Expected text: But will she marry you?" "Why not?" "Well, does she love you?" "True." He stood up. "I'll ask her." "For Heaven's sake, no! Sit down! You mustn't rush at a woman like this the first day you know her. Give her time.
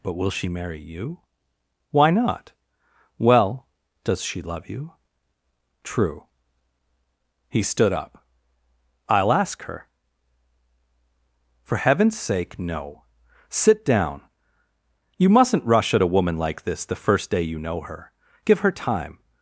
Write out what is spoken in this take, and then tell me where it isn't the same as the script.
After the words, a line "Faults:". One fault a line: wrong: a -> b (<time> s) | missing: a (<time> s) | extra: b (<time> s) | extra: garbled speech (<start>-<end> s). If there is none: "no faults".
But will she marry you?" "Why not?" "Well, does she love you?" "True." He stood up. "I'll ask her." "For Heaven's sake, no! Sit down! You mustn't rush at a woman like this the first day you know her. Give her time.
Faults:
no faults